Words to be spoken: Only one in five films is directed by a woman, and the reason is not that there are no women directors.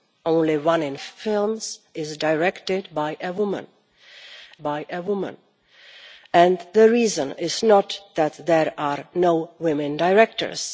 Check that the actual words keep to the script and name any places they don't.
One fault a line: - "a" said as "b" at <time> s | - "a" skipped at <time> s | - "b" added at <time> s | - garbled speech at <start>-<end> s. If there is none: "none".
- "five" skipped at 1.0 s
- "by a woman" added at 4.6 s